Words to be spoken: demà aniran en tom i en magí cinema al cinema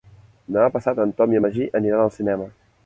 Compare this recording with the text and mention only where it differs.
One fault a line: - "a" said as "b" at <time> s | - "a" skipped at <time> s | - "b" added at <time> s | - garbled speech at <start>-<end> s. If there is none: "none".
- "aniran" said as "passat" at 0.8 s
- "cinema" said as "aniran" at 1.8 s